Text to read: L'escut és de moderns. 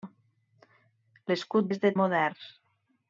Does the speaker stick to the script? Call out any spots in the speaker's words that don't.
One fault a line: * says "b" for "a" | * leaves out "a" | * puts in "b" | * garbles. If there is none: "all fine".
all fine